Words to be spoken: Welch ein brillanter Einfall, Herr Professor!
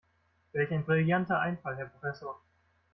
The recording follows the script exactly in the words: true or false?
true